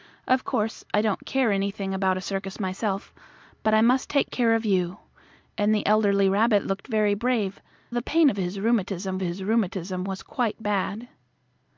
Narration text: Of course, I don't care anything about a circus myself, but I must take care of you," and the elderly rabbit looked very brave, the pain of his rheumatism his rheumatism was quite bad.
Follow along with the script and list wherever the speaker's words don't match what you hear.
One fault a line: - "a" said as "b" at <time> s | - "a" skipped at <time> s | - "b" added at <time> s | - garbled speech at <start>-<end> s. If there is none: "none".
none